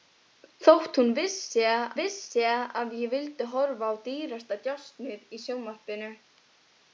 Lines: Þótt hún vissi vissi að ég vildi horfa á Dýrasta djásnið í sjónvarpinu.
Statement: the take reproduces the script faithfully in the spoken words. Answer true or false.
true